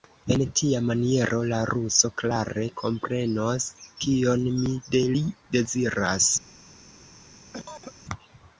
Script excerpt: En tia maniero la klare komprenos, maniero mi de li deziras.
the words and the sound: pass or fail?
fail